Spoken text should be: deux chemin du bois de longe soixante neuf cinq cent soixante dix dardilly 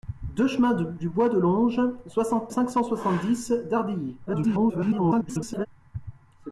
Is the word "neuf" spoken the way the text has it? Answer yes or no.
no